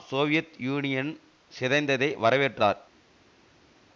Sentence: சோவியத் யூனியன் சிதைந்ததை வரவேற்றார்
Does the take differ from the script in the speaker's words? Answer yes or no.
no